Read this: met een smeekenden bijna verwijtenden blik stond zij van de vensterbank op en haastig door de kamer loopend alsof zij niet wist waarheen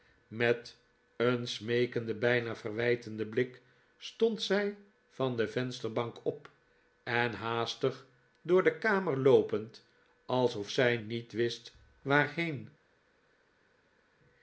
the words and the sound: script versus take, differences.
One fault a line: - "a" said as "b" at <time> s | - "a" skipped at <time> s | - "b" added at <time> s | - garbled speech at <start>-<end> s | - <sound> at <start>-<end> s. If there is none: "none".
none